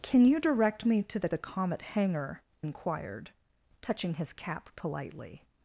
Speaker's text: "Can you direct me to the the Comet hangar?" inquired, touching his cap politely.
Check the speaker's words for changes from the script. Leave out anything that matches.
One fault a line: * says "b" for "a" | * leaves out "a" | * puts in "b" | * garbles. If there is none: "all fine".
all fine